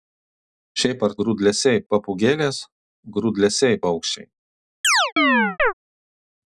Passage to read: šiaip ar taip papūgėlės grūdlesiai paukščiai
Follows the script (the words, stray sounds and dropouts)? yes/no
no